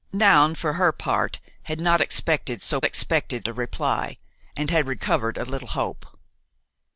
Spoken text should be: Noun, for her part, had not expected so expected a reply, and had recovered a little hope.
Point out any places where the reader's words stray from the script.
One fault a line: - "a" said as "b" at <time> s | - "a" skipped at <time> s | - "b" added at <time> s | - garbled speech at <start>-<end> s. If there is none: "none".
none